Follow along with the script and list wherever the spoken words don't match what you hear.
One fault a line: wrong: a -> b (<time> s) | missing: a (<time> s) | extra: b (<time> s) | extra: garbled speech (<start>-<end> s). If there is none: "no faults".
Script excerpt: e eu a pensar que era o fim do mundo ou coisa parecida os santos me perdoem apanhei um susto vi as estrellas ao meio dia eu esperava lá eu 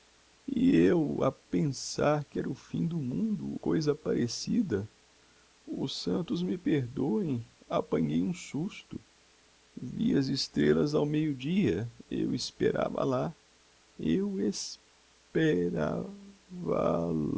missing: ou (3.6 s)